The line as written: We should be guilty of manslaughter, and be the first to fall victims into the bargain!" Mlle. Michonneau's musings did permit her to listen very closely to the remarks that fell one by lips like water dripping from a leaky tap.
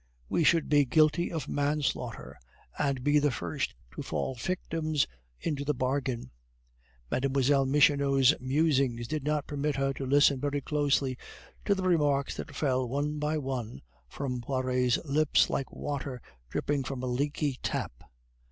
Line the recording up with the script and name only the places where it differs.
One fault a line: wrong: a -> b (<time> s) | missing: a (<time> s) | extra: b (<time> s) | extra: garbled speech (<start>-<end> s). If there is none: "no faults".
extra: not (9.2 s)
extra: one from Poiret's (13.4 s)